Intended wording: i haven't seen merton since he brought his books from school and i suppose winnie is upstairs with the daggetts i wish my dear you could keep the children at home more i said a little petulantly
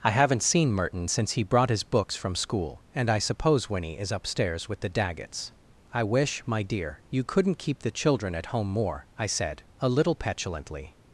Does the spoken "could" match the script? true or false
false